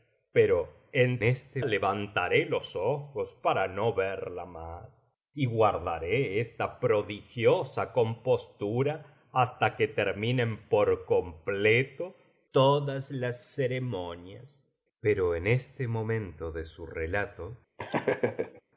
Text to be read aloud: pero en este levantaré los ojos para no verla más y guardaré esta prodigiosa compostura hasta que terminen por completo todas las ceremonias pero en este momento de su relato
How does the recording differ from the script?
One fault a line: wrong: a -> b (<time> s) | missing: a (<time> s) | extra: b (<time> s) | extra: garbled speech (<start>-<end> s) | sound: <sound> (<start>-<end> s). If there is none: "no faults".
sound: laugh (17.8-18.6 s)